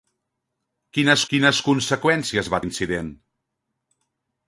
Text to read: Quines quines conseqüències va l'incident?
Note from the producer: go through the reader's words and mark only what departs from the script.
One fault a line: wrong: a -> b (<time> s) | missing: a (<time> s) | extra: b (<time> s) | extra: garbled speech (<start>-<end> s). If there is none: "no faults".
no faults